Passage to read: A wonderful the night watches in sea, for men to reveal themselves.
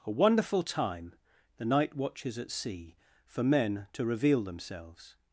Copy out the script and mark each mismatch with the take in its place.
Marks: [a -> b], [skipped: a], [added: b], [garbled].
A wonderful [added: time] the night watches [in -> at] sea, for men to reveal themselves.